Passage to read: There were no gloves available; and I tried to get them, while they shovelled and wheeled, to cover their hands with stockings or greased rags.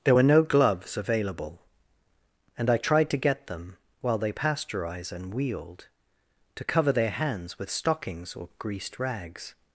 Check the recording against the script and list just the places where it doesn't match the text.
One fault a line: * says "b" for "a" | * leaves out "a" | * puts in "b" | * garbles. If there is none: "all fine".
* says "pasteurize" for "shovelled"